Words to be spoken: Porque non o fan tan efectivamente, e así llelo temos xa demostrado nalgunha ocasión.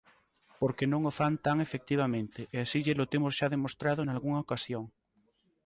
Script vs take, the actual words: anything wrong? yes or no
no